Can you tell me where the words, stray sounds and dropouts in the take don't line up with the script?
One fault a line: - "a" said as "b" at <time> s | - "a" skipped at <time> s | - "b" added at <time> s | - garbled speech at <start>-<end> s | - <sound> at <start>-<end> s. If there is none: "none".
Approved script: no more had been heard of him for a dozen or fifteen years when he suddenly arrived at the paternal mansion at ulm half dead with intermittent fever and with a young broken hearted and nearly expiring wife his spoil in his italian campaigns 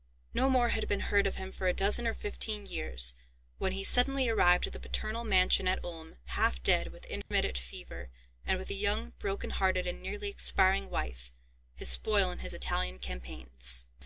- dropout at 7.2-7.3 s